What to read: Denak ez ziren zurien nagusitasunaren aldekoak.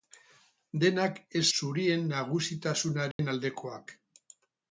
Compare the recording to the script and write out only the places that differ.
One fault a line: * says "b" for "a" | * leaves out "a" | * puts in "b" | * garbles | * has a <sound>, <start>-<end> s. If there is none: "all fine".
* leaves out "ziren"
* has a dropout, 3.1-3.2 s